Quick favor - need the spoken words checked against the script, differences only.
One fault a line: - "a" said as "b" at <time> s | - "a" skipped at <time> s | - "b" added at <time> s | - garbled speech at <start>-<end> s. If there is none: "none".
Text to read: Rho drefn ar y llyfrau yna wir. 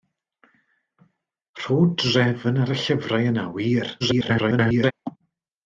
- garbled speech at 4.0-4.9 s